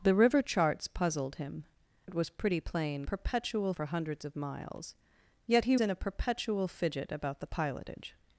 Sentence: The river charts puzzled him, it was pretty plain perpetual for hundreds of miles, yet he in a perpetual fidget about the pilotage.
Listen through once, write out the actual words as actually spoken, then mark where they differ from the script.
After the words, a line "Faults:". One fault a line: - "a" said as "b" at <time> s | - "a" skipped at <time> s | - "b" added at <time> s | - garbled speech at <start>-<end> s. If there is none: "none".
The river charts puzzled him, it was pretty plain perpetual for hundreds of miles, yet he in a perpetual fidget about the pilotage.
Faults:
none